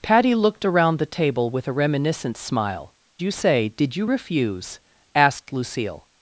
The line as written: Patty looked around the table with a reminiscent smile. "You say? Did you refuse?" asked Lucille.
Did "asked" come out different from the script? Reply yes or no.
no